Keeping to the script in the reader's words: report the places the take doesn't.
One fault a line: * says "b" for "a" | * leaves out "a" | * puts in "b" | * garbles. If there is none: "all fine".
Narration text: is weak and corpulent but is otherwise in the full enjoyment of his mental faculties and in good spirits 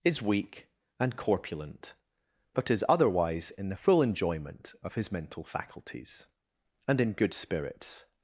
all fine